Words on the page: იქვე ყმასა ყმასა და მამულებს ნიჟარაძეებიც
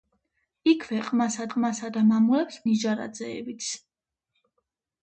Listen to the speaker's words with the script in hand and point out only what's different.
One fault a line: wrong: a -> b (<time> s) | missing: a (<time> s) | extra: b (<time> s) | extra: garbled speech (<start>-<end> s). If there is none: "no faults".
no faults